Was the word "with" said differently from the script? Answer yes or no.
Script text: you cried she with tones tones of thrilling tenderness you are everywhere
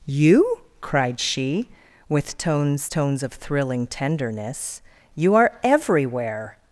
no